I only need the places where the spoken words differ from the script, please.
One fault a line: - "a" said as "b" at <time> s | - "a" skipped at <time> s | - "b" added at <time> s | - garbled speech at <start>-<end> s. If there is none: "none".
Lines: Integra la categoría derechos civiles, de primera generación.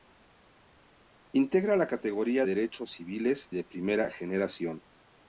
none